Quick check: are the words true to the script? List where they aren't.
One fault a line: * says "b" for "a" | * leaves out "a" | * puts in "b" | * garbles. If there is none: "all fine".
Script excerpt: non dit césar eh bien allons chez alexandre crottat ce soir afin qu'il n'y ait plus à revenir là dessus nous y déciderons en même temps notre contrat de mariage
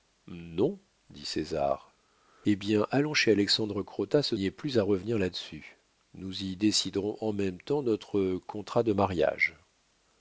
* leaves out "soir afin qu'il"